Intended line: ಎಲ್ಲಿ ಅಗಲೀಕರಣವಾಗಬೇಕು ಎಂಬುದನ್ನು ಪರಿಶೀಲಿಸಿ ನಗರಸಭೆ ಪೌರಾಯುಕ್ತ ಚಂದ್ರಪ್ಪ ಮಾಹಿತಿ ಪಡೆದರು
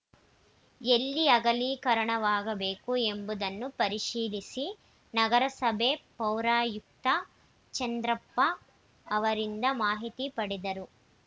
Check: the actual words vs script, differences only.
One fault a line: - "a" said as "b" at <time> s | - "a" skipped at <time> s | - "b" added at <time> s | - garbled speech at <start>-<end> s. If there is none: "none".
- "ಅವರಿಂದ" added at 9.1 s